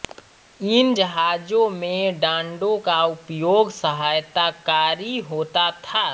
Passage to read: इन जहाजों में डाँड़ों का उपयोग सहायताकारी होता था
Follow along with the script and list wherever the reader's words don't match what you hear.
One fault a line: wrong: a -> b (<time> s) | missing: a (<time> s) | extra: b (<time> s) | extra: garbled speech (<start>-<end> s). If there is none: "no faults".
no faults